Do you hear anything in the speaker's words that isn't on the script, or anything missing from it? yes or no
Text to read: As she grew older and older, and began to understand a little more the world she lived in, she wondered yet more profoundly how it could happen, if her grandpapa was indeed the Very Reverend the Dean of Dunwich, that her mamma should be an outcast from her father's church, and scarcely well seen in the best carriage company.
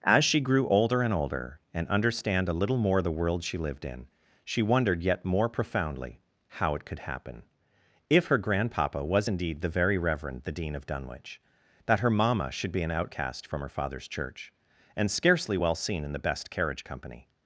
yes